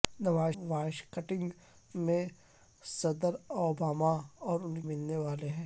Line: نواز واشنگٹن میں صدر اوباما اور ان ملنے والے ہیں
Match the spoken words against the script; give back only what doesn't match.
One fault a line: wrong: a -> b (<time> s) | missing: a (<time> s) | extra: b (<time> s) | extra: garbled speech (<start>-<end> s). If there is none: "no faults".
no faults